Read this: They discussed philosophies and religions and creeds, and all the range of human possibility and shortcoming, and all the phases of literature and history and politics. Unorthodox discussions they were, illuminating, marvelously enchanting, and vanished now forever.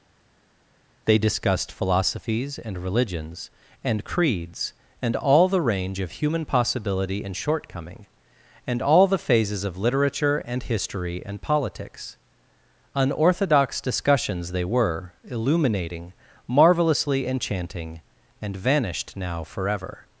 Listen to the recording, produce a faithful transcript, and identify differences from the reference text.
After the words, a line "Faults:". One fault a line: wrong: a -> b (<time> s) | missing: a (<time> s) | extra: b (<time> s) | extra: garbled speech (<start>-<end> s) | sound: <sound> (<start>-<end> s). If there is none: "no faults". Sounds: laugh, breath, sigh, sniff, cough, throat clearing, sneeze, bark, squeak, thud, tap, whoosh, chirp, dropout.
They discussed philosophies and religions and creeds, and all the range of human possibility and shortcoming, and all the phases of literature and history and politics. Unorthodox discussions they were, illuminating, marvelously enchanting, and vanished now forever.
Faults:
no faults